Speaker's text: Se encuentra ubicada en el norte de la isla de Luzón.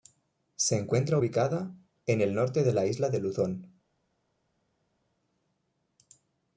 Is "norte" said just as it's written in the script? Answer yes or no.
yes